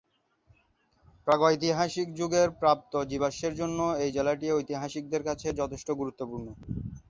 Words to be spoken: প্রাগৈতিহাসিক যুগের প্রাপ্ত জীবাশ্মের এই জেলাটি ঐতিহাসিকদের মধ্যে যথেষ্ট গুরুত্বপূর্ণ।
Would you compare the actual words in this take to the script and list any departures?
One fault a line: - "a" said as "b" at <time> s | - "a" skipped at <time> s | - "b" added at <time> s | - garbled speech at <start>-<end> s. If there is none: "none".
- "জন্য" added at 3.5 s
- "মধ্যে" said as "কাছে" at 5.3 s